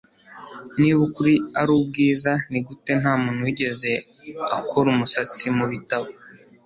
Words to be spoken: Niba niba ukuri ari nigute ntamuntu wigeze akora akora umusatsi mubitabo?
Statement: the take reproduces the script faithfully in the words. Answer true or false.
false